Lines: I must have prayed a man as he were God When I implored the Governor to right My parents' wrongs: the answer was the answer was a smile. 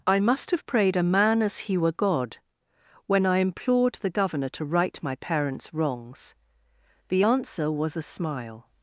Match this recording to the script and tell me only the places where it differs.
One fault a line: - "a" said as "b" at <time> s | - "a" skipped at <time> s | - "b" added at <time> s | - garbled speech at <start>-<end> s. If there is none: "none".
- "the answer was" skipped at 8.0 s